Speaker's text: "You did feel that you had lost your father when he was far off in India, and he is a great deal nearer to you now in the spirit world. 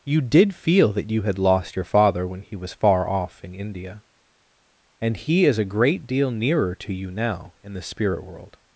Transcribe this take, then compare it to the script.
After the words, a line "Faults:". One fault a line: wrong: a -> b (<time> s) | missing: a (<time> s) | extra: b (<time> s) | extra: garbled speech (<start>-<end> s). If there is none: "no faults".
"You did feel that you had lost your father when he was far off in India, and he is a great deal nearer to you now in the spirit world.
Faults:
no faults